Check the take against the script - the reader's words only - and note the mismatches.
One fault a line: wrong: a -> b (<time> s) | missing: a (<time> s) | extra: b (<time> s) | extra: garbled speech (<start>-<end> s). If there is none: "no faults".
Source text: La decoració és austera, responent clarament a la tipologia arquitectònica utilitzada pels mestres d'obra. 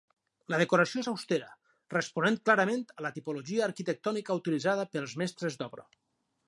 no faults